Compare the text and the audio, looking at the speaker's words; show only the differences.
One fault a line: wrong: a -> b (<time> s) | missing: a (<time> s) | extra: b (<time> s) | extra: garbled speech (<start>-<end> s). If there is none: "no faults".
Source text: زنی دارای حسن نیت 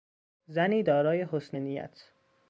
no faults